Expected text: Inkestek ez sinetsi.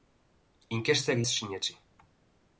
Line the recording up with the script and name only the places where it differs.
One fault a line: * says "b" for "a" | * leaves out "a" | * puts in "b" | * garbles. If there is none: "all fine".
all fine